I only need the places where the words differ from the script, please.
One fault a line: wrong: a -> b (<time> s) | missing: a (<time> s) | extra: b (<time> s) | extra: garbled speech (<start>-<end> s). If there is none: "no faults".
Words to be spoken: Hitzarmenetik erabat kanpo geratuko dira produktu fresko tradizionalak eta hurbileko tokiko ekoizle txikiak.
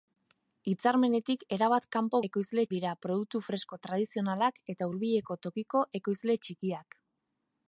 wrong: geratuko -> ekoizle (2.3 s)